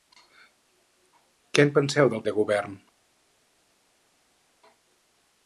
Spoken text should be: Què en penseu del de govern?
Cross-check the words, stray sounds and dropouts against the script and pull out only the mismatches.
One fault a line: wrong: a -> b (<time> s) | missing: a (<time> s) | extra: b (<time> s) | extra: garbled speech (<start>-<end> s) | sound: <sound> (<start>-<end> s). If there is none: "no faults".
no faults